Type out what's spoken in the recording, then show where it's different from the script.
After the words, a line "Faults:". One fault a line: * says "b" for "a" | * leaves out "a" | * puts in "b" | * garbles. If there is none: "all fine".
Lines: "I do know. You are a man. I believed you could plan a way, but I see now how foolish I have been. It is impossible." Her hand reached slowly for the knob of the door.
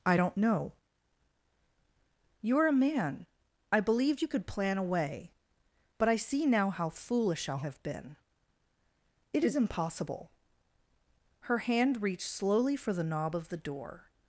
"I don't know. You are a man. I believed you could plan a way, but I see now how foolish I have been. It is impossible." Her hand reached slowly for the knob of the door.
Faults:
* says "don't" for "do"